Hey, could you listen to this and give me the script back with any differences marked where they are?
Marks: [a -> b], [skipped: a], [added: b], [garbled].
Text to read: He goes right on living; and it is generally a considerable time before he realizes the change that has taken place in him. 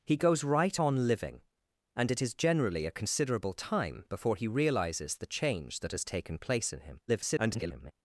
He goes right on living; and it is generally a considerable time before he realizes the change that has taken place in him. [garbled]